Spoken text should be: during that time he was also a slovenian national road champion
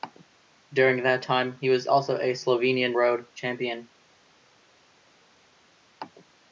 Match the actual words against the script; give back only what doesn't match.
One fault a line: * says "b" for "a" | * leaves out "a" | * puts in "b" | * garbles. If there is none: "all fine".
* leaves out "national"